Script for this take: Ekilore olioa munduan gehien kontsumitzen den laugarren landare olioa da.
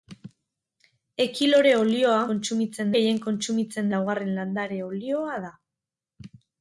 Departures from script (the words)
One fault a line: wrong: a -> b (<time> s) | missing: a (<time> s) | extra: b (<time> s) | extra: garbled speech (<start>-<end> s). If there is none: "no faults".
wrong: munduan -> kontsumitzen (2.3 s)
missing: den (3.9 s)